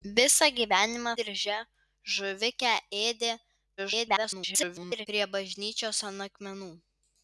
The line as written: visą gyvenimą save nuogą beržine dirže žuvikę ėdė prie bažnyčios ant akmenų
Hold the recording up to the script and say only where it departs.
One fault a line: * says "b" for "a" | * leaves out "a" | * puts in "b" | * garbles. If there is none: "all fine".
* leaves out "save nuogą beržine"
* garbles